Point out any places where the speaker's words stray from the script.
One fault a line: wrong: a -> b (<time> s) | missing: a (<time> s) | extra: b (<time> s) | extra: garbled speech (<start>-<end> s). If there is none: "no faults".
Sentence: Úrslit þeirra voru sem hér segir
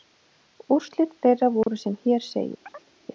no faults